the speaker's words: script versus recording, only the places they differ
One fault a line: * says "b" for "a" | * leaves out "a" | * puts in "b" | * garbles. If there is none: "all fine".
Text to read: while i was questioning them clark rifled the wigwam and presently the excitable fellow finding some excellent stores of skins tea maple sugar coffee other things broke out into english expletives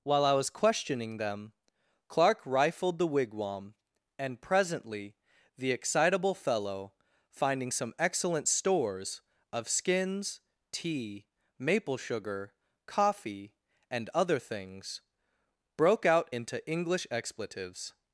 * puts in "and"